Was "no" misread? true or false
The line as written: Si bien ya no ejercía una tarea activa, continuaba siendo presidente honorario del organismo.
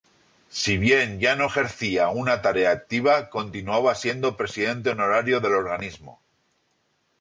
false